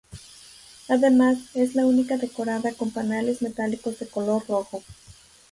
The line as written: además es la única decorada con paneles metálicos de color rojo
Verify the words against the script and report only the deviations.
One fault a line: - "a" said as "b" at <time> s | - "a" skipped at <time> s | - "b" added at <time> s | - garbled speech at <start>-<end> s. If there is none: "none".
none